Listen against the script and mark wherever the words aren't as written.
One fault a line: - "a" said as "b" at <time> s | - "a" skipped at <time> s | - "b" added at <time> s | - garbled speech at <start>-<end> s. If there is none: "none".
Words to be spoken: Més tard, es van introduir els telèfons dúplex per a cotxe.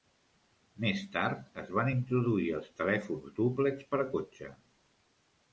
none